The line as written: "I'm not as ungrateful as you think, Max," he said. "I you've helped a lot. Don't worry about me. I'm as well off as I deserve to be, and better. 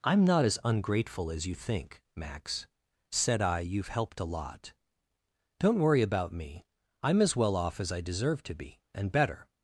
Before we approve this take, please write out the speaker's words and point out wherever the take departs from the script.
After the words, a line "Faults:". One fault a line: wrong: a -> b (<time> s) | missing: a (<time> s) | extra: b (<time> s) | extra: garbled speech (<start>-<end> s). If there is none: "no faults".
"I'm not as ungrateful as you think, Max," said. "I you've helped a lot. Don't worry about me. I'm as well off as I deserve to be, and better.
Faults:
missing: he (2.6 s)